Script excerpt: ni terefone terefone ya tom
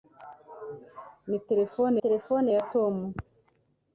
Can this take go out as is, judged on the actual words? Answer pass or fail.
pass